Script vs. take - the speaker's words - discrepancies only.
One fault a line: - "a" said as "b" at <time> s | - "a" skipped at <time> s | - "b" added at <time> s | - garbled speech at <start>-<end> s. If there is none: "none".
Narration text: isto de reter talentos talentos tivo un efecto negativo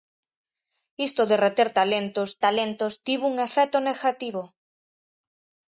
none